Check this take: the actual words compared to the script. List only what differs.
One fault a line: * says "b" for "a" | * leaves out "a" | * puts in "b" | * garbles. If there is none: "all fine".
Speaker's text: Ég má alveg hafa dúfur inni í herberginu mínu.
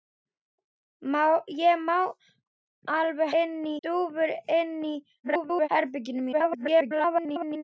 * says "inni" for "hafa"
* garbles
* garbles